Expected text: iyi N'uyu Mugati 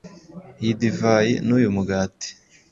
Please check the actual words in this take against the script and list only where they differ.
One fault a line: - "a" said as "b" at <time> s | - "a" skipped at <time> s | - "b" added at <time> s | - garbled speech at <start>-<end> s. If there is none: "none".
- "Divayi" added at 0.8 s